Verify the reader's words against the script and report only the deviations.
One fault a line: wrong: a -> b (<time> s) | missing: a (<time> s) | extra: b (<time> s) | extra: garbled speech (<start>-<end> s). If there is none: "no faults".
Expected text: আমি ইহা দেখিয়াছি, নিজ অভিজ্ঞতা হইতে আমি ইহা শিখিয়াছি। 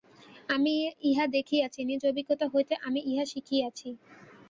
no faults